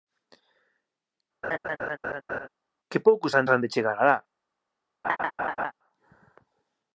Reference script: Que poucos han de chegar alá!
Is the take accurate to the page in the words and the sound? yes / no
no